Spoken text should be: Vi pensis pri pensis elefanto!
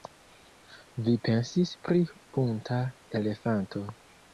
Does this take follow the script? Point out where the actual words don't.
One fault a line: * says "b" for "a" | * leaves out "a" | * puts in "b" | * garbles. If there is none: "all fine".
* says "bunta" for "pensis"